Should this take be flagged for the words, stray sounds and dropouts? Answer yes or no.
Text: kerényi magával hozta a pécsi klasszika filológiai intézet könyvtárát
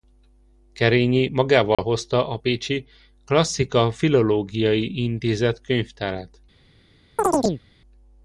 yes